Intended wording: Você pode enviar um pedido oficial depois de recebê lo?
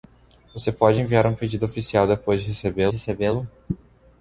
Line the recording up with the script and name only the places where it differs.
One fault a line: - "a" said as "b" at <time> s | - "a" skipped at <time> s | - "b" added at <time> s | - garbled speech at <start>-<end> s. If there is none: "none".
- "recebê" added at 2.9 s